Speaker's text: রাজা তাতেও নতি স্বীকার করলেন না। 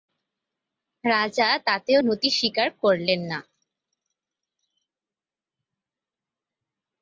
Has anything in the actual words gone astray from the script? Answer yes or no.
no